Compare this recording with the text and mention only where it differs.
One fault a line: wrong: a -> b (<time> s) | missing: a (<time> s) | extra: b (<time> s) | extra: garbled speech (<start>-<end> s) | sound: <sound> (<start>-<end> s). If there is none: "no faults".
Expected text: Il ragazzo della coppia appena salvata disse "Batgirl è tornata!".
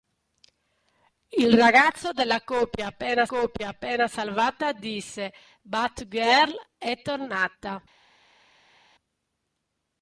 extra: coppia appena (3.2 s)